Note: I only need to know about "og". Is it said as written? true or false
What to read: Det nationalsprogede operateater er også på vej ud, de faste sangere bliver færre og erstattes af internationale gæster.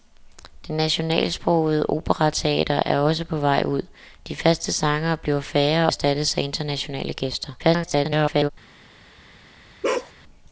false